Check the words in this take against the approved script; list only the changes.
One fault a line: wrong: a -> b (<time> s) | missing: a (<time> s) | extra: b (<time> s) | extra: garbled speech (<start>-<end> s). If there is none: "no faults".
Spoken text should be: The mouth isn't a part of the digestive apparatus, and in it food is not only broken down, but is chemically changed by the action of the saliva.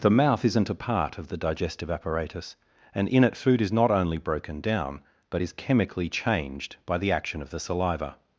no faults